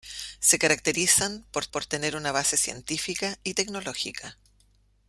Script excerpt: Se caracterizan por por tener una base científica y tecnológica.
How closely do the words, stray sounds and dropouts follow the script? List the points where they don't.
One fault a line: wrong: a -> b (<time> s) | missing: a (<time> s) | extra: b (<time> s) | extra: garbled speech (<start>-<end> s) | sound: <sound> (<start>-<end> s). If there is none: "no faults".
no faults